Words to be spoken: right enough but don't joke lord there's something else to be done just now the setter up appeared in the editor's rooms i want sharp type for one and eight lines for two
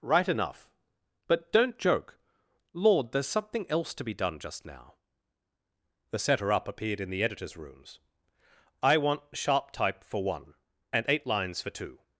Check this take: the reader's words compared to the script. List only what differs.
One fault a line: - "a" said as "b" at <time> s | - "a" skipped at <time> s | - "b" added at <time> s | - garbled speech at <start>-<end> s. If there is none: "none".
none